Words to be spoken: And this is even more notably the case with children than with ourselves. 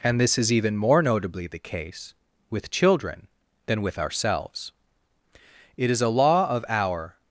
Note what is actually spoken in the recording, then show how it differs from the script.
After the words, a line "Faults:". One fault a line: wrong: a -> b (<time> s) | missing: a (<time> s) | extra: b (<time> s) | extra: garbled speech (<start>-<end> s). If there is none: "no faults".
And this is even more notably the case with children than with ourselves. It is a law of our
Faults:
extra: It is a law of our (5.8 s)